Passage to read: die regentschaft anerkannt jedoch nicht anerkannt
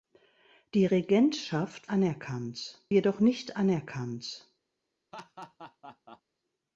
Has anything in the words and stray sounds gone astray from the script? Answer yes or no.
yes